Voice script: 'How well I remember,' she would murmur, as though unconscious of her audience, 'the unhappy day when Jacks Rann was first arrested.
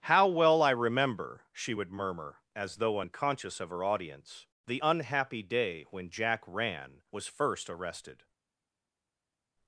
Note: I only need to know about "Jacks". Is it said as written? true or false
false